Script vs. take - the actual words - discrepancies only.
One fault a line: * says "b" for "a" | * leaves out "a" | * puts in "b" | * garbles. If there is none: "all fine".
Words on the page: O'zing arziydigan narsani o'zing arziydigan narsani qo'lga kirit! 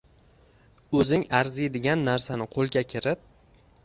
* leaves out "o'zing arziydigan narsani"